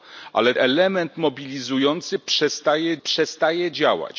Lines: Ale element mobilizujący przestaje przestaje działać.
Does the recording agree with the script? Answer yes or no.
yes